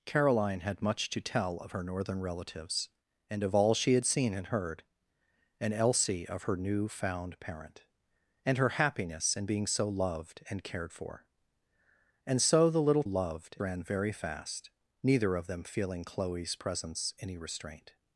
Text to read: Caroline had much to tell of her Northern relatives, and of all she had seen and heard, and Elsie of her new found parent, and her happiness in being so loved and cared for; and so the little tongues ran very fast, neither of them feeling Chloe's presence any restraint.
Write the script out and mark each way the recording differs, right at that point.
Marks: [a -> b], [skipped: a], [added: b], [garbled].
Caroline had much to tell of her Northern relatives, and of all she had seen and heard, and Elsie of her new found parent, and her happiness in being so loved and cared for; and so the little [tongues -> loved] ran very fast, neither of them feeling Chloe's presence any restraint.